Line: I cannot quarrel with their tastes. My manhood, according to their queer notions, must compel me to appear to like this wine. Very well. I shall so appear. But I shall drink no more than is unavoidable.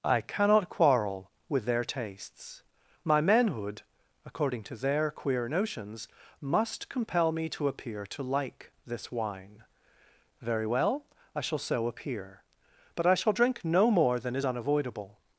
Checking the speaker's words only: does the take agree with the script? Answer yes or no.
yes